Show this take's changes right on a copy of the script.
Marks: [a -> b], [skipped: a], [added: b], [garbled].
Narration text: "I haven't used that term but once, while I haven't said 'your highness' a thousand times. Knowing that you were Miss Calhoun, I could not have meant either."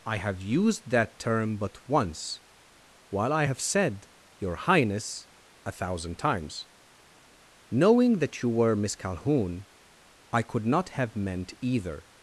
"I [haven't -> have] used that term but once, while I [haven't -> have] said 'your highness' a thousand times. Knowing that you were Miss Calhoun, I could not have meant either."